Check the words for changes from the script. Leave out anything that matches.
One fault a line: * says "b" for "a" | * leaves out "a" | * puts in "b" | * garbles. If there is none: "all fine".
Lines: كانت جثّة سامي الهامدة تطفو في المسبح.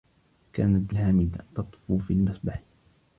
* leaves out "جثّة سامي"